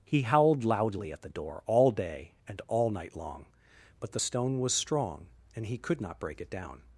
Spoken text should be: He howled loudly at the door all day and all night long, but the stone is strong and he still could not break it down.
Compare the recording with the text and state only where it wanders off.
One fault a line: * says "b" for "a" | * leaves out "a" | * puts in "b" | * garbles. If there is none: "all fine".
* says "was" for "is"
* leaves out "still"